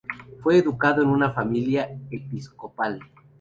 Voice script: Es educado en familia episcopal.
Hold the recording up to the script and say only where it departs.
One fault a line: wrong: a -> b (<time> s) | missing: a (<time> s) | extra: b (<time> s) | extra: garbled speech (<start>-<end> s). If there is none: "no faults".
wrong: Es -> Fue (0.4 s)
extra: una (1.1 s)